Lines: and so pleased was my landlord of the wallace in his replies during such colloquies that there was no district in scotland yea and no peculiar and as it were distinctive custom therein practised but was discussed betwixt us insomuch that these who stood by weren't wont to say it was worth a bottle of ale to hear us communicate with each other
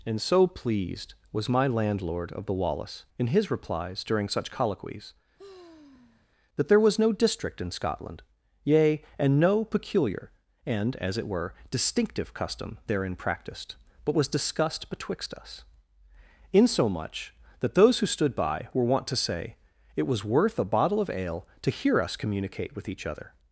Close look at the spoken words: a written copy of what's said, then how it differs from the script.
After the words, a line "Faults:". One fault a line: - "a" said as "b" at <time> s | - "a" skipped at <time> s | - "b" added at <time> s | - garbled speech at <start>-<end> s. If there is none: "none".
and so pleased was my landlord of the wallace in his replies during such colloquies that there was no district in scotland yea and no peculiar and as it were distinctive custom therein practised but was discussed betwixt us insomuch that those who stood by were wont to say it was worth a bottle of ale to hear us communicate with each other
Faults:
- "these" said as "those" at 17.8 s
- "weren't" said as "were" at 18.7 s